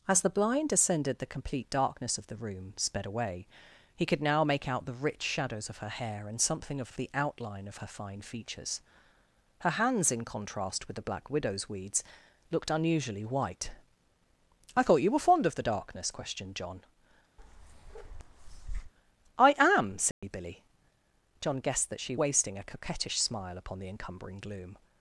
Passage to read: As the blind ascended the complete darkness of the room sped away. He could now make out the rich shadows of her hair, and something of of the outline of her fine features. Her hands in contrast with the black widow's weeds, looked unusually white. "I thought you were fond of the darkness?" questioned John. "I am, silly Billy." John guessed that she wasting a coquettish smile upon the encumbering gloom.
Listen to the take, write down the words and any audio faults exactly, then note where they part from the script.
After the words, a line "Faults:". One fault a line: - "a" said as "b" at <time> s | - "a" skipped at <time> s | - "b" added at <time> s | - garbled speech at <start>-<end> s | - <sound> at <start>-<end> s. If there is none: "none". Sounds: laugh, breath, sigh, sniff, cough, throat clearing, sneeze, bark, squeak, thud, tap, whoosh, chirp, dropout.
As the blind ascended the complete darkness of the room sped away. He could now make out the rich shadows of her hair, and something of of the outline of her fine features. Her hands in contrast with the black widow's weeds, looked unusually white. "I thought you were fond of the darkness?" questioned John. "I am, silly Billy." John guessed that she wasting a coquettish smile upon the encumbering gloom.
Faults:
- bark at 17.4-18.9 s
- dropout at 20.1-20.2 s